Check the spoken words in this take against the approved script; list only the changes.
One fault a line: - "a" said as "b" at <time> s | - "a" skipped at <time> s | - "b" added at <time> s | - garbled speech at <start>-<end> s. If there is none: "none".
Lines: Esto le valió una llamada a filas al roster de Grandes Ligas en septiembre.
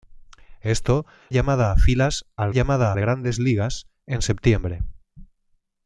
- "le valió una" skipped at 1.1 s
- "roster" said as "llamada" at 2.5 s